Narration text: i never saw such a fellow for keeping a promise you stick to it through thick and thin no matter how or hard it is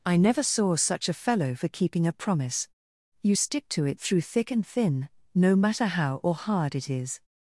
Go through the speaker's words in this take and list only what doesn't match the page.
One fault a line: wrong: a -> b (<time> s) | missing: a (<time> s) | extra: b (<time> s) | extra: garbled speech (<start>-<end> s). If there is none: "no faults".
no faults